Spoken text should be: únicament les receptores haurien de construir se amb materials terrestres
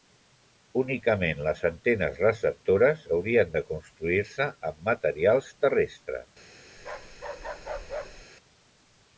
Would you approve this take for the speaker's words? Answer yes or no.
no